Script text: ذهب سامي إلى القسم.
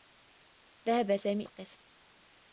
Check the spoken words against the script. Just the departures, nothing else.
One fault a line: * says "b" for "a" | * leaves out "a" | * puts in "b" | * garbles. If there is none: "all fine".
* leaves out "إلى"